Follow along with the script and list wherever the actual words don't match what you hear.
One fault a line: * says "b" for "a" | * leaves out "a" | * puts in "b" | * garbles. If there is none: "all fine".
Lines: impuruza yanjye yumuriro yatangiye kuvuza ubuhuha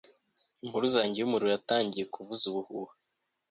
all fine